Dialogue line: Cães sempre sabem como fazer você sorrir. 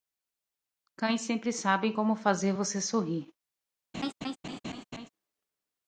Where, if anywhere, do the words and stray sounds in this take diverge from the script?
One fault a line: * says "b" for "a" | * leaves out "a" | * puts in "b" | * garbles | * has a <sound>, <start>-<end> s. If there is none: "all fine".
* has a laugh, 3.9-5.1 s